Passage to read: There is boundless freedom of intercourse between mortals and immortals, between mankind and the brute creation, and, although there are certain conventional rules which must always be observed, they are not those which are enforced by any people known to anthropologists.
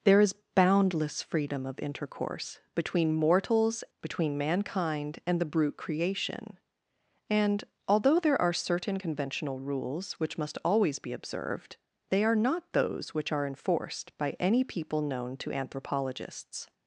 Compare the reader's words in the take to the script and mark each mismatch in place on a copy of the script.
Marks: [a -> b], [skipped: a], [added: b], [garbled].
There is boundless freedom of intercourse between mortals [skipped: and immortals,] between mankind and the brute creation, and, although there are certain conventional rules which must always be observed, they are not those which are enforced by any people known to anthropologists.